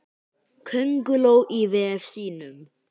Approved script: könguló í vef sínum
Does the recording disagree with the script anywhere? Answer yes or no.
no